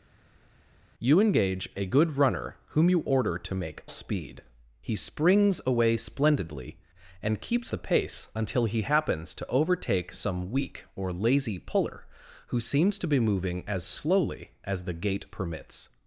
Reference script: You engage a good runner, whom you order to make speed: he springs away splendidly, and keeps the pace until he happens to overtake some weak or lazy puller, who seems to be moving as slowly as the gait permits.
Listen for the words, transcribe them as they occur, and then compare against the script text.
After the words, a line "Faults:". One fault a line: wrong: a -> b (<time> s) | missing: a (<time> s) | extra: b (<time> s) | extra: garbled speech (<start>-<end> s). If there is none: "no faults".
You engage a good runner, whom you order to make speed: he springs away splendidly, and keeps the pace until he happens to overtake some weak or lazy puller, who seems to be moving as slowly as the gait permits.
Faults:
no faults